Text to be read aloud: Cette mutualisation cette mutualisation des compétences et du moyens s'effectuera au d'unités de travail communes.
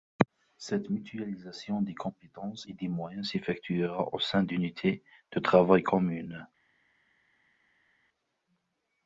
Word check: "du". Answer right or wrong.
wrong